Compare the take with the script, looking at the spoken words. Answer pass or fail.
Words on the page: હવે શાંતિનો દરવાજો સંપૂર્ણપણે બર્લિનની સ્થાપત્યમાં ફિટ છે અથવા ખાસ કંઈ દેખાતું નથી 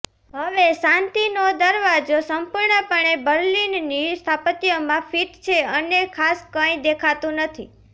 fail